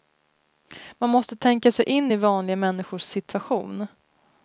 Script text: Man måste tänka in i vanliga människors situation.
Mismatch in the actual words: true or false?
true